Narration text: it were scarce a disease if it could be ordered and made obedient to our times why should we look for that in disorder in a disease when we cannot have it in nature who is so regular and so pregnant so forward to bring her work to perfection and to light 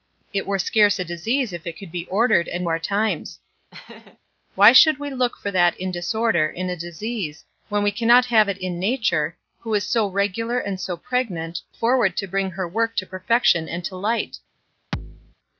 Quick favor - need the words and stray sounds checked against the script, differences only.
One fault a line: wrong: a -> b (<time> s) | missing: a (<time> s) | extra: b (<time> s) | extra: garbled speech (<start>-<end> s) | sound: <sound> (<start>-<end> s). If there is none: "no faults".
missing: made obedient to (2.7 s)
sound: laugh (3.7-4.2 s)
missing: so (11.6 s)
sound: thud (14.9-15.4 s)